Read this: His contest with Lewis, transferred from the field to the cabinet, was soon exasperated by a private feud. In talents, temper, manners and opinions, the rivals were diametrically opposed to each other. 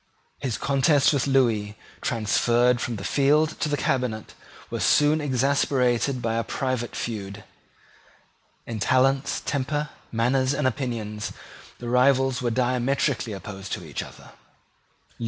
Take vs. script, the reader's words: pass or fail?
pass